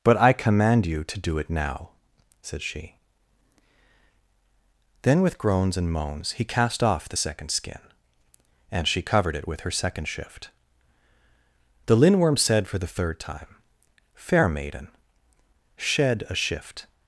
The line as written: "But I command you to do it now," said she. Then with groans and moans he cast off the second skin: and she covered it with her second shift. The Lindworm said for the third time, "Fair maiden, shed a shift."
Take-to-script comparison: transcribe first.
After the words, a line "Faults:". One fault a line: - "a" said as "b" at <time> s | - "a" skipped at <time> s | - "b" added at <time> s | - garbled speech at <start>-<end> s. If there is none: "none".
"But I command you to do it now," said she. Then with groans and moans he cast off the second skin: and she covered it with her second shift. The Lindworm said for the third time, "Fair maiden, shed a shift."
Faults:
none